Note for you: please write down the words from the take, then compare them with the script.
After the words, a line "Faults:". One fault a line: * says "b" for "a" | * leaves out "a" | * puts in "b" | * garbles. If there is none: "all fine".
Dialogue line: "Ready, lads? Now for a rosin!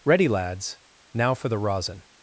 "Ready, lads? Now for the rosin!
Faults:
* says "the" for "a"